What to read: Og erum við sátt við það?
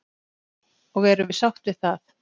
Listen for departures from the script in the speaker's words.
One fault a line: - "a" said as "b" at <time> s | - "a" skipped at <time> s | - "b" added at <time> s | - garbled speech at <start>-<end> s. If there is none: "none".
none